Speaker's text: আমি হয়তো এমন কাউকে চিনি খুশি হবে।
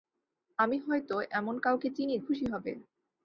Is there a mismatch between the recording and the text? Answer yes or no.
no